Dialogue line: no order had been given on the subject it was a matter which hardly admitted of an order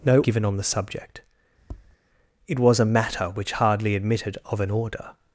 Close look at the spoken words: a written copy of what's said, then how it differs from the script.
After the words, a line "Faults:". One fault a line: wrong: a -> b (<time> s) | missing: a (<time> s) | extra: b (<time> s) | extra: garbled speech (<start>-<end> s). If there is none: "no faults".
no given on the subject it was a matter which hardly admitted of an order
Faults:
missing: order had been (0.2 s)